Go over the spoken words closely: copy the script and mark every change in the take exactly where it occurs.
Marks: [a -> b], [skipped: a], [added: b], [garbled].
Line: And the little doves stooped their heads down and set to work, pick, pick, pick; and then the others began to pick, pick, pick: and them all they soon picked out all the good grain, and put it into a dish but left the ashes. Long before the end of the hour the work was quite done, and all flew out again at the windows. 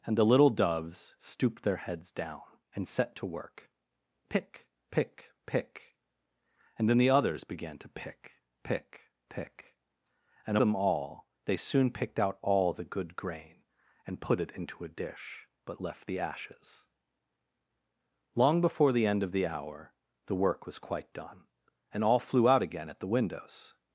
And the little doves stooped their heads down and set to work, pick, pick, pick; and then the others began to pick, pick, pick: and them all they soon picked out all the good grain, and put it into a dish but left the ashes. Long before the end of the hour the work was quite done, and all flew out again at the windows.